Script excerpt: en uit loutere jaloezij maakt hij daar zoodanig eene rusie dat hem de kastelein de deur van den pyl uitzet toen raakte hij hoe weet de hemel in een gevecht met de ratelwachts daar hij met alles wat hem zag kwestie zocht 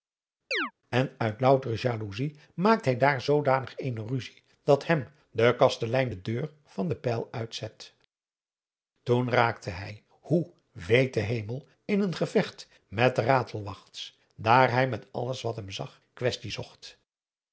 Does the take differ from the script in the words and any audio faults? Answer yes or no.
yes